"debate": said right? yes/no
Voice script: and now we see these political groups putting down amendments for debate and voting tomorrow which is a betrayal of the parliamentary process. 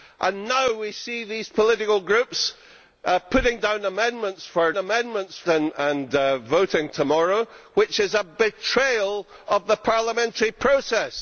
no